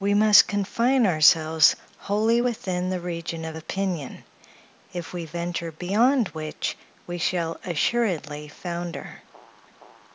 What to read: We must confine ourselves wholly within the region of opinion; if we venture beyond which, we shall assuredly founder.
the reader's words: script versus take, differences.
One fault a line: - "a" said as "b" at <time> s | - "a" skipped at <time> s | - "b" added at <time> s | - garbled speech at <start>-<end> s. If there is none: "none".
none